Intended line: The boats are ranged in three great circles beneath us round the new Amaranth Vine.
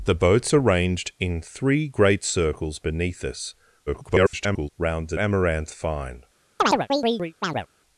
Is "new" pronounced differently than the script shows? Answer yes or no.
yes